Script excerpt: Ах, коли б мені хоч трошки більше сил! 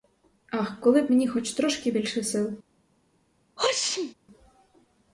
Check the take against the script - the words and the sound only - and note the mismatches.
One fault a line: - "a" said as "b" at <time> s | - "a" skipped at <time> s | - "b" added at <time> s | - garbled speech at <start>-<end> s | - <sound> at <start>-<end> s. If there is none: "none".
- sneeze at 3.6-4.1 s